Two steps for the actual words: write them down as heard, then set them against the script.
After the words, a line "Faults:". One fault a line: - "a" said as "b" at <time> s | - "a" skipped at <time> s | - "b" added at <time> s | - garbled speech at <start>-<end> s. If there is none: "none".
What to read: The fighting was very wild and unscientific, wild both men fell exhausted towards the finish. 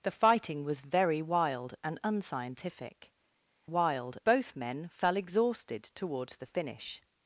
The fighting was very wild and unscientific, wild both men fell exhausted towards the finish.
Faults:
none